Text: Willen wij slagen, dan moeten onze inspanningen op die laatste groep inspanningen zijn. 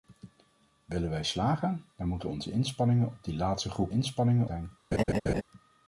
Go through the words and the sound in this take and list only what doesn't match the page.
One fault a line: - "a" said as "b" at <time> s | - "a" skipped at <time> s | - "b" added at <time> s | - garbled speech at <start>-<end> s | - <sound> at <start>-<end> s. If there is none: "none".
- laugh at 4.9-5.4 s